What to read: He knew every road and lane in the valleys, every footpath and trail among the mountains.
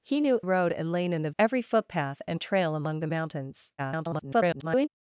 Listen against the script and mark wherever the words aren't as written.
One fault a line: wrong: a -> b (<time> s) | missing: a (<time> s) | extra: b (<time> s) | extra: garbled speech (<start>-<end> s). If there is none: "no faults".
missing: every (0.4 s)
missing: valleys (1.3 s)
extra: garbled speech (3.8-4.9 s)